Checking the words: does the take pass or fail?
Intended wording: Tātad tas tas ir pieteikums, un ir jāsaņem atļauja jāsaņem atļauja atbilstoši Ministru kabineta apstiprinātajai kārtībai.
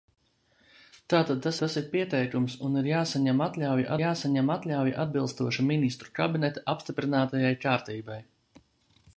pass